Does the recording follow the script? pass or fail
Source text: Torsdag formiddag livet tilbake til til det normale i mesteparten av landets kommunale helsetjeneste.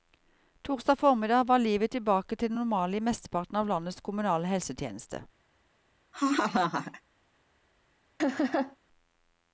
fail